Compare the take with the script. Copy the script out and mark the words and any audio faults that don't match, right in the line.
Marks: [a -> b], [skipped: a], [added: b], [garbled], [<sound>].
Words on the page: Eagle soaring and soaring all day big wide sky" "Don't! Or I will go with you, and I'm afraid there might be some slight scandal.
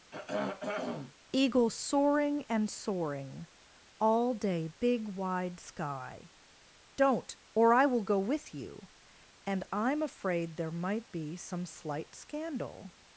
[throat clearing] Eagle soaring and soaring all day big wide sky" "Don't! Or I will go with you, and I'm afraid there might be some slight scandal.